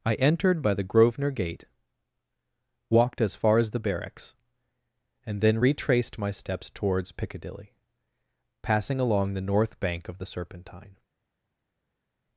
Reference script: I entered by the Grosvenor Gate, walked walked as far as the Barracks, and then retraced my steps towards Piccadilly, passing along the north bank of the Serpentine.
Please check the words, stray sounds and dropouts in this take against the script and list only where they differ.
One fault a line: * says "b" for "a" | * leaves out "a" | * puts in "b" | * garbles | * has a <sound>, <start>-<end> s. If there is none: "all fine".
* leaves out "walked"